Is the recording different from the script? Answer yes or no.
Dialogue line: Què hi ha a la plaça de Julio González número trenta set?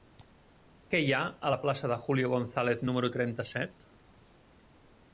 no